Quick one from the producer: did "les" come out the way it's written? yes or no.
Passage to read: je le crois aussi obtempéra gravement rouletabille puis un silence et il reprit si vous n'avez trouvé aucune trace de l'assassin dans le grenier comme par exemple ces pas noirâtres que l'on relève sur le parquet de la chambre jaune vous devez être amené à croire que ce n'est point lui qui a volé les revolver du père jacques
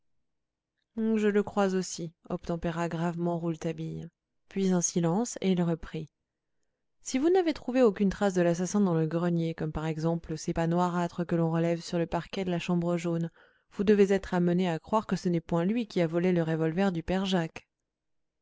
no